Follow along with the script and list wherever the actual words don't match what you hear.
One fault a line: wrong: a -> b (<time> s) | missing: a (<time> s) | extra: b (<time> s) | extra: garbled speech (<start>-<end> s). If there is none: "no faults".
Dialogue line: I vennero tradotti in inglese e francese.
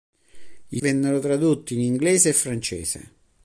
no faults